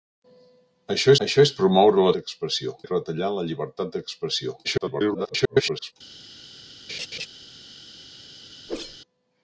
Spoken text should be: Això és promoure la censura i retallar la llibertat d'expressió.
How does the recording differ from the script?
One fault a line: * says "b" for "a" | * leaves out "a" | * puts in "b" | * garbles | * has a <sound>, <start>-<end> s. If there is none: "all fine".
* puts in "això"
* says "d'expressió" for "censura"
* garbles
* has a laugh, 6.9-7.3 s
* has a whoosh, 8.7-9.0 s